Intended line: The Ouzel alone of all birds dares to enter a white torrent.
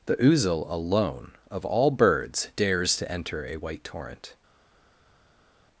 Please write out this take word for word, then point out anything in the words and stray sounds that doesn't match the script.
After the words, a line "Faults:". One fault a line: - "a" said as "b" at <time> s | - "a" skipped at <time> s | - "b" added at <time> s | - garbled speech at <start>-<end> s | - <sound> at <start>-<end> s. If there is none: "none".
The Ouzel alone of all birds dares to enter a white torrent.
Faults:
none